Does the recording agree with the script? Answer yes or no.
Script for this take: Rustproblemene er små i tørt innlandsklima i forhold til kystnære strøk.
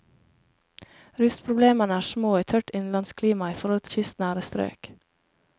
no